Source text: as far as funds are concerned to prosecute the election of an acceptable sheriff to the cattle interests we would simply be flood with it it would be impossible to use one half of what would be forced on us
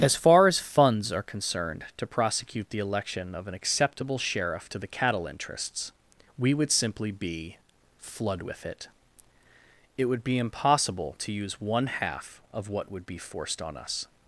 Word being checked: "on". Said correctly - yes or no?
yes